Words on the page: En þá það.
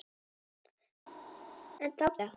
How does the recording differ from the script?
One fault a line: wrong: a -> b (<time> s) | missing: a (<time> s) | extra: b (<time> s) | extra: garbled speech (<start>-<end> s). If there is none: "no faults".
no faults